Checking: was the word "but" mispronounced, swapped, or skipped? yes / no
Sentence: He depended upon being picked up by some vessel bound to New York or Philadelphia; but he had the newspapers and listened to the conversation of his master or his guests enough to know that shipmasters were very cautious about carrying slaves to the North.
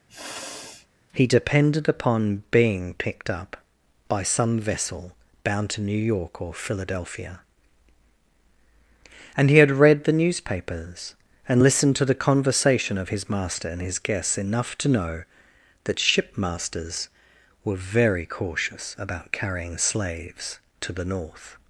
yes